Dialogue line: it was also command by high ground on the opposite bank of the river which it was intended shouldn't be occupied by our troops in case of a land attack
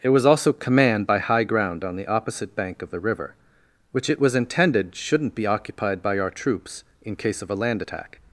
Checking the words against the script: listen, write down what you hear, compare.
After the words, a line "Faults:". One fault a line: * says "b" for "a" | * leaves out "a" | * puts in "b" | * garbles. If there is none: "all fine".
it was also command by high ground on the opposite bank of the river which it was intended shouldn't be occupied by our troops in case of a land attack
Faults:
all fine